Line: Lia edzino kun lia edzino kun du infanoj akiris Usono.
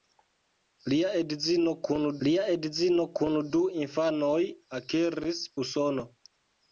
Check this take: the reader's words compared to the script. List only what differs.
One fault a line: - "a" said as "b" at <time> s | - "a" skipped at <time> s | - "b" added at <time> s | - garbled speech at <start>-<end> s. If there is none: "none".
none